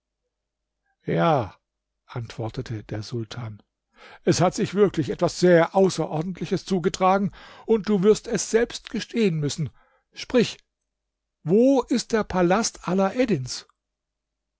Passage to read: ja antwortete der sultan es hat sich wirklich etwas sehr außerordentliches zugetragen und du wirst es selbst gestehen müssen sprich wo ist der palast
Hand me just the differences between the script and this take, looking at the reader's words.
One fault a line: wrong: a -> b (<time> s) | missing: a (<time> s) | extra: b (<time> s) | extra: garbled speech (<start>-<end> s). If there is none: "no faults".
no faults